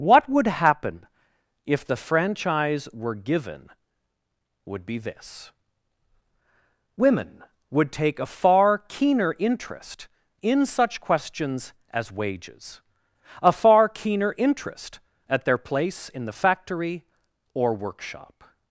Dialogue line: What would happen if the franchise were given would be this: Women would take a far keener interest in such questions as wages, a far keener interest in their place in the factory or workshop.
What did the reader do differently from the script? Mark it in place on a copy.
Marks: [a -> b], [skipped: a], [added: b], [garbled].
What would happen if the franchise were given would be this: Women would take a far keener interest in such questions as wages, a far keener interest [in -> at] their place in the factory or workshop.